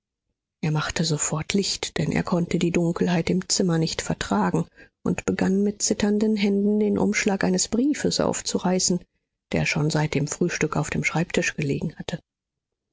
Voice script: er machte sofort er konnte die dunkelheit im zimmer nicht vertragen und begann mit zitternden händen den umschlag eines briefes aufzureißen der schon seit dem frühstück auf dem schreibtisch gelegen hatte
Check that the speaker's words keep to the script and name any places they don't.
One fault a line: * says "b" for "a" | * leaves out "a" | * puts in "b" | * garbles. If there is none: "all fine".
* puts in "licht denn"